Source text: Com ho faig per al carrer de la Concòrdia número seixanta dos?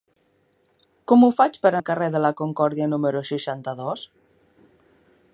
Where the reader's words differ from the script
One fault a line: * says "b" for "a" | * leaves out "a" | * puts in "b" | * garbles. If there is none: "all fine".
all fine